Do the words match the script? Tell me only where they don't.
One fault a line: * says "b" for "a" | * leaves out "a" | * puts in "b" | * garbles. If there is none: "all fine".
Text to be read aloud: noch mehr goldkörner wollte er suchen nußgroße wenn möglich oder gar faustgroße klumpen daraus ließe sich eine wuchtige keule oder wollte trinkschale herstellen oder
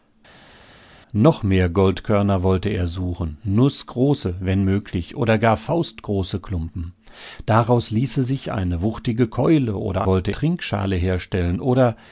all fine